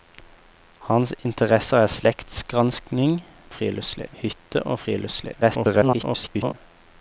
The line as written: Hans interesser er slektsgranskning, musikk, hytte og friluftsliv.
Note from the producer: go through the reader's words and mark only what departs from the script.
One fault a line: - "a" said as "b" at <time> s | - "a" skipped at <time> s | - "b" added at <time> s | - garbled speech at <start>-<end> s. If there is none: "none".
- "musikk" said as "friluftsliv" at 3.5 s
- garbled speech at 5.4-6.5 s